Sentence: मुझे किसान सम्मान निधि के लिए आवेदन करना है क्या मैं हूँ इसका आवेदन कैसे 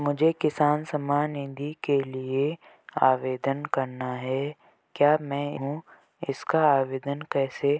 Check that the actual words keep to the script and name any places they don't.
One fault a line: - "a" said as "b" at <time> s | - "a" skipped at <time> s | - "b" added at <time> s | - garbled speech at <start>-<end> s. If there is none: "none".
none